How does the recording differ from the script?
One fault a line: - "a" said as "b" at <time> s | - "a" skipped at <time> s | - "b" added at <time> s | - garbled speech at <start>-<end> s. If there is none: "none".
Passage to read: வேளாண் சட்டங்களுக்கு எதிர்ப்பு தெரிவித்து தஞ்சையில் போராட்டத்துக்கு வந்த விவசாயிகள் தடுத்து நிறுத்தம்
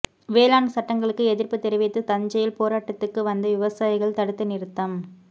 none